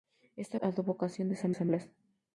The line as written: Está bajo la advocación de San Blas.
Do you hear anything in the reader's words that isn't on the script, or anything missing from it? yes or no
yes